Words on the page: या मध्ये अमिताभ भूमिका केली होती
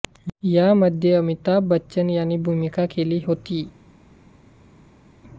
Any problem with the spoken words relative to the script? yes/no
yes